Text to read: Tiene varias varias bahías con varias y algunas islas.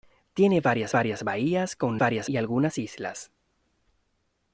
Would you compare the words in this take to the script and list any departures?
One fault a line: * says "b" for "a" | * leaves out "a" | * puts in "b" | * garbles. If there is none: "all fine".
all fine